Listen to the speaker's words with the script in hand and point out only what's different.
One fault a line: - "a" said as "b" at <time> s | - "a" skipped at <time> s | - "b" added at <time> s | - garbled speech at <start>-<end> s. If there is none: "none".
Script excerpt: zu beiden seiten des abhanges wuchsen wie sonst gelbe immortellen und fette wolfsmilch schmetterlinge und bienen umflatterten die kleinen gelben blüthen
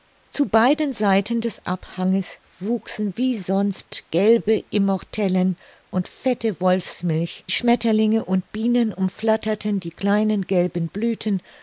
none